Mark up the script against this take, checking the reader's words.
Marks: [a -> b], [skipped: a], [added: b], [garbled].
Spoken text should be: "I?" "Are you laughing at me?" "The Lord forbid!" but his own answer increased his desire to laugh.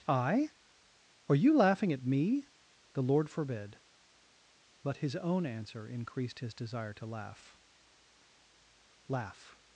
"I?" "Are you laughing at me?" "The Lord forbid!" but his own answer increased his desire to laugh. [added: laugh]